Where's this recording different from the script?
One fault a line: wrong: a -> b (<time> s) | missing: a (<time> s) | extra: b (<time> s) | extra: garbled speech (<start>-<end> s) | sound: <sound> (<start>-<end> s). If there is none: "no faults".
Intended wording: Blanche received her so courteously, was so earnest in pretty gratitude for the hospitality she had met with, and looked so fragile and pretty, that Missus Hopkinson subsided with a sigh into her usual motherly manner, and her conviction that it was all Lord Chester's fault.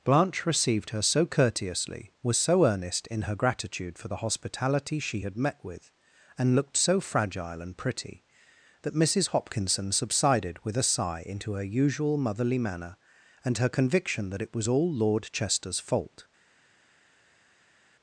wrong: pretty -> her (3.2 s)